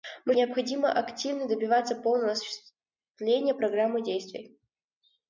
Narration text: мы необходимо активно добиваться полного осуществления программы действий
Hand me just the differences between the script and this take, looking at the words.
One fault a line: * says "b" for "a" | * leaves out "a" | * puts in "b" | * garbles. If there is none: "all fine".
all fine